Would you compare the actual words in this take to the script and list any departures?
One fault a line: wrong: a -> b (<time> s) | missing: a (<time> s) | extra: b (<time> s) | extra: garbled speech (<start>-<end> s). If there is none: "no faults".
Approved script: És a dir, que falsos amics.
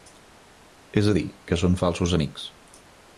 extra: són (1.6 s)